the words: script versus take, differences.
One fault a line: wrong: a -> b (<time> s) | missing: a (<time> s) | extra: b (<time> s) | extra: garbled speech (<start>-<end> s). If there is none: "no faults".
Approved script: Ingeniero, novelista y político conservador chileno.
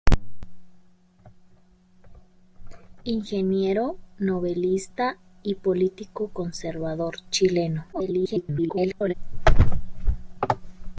extra: garbled speech (7.9-9.1 s)